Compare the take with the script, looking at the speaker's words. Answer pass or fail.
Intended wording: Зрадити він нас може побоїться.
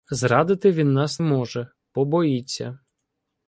pass